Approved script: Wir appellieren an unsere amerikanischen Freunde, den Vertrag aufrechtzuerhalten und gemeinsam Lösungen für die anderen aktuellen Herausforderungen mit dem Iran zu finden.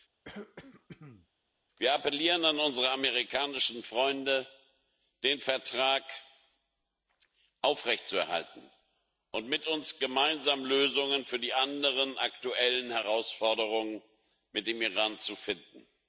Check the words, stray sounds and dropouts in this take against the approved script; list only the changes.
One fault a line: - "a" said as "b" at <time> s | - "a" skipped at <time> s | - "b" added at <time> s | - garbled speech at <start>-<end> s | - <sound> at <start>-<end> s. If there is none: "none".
- throat clearing at 0.2-1.3 s
- "mit uns" added at 9.5 s